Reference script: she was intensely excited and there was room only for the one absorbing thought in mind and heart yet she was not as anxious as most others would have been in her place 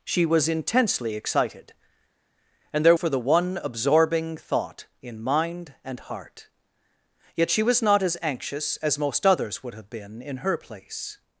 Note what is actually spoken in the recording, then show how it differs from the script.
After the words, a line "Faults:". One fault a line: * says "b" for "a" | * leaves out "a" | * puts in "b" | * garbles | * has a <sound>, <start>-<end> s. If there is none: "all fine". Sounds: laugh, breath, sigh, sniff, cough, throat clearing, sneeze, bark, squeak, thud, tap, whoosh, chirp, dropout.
she was intensely excited and there for the one absorbing thought in mind and heart yet she was not as anxious as most others would have been in her place
Faults:
* leaves out "was room only"